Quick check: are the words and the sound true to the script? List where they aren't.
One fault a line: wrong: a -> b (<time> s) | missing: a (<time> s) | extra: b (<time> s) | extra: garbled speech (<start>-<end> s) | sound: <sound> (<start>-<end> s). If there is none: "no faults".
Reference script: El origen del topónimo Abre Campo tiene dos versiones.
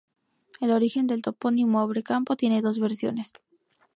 no faults